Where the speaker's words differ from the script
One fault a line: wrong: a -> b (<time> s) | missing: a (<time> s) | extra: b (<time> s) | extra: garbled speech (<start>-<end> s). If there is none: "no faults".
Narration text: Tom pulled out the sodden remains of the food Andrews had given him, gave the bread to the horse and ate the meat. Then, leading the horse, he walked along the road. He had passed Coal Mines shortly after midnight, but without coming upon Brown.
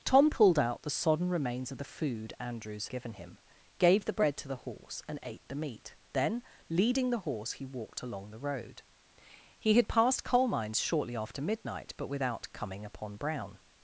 missing: had (2.9 s)